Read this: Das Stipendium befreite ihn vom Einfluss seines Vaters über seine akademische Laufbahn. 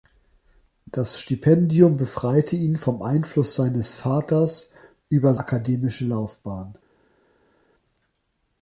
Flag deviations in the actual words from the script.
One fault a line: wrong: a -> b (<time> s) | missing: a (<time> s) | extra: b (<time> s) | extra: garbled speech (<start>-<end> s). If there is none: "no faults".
missing: seine (5.3 s)